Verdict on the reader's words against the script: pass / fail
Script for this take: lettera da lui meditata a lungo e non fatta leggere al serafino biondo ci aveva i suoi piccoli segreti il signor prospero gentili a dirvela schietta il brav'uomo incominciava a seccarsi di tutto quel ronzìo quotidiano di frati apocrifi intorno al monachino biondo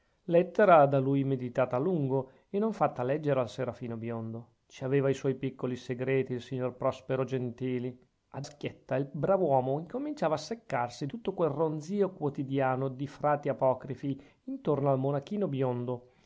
fail